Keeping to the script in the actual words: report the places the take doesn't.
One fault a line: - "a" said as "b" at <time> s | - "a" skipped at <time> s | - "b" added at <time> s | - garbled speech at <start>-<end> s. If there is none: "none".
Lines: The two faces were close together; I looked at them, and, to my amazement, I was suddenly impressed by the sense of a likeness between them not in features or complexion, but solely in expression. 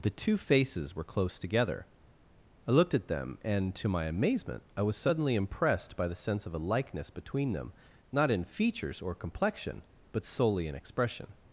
none